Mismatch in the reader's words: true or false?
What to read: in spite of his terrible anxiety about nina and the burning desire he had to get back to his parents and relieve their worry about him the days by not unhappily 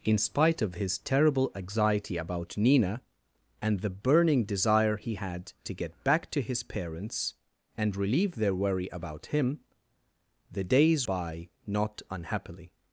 false